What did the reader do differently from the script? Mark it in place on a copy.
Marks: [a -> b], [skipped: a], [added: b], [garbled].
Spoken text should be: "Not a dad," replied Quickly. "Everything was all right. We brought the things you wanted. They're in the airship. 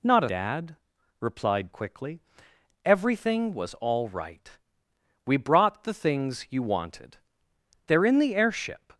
"Not a dad," replied Quickly. "Everything was all right. We brought the things you wanted. They're in the airship.